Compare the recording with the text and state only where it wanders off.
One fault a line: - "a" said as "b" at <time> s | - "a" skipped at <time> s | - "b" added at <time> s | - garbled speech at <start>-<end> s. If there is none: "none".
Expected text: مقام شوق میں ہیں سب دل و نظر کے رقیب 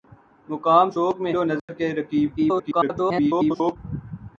- "ہیں سب دل" skipped at 1.3 s
- garbled speech at 2.4-3.8 s